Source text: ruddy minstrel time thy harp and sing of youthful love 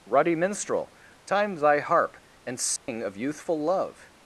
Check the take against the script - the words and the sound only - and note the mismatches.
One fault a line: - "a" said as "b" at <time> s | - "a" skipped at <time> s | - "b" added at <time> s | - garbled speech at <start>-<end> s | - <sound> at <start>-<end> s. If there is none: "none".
- dropout at 2.8-2.9 s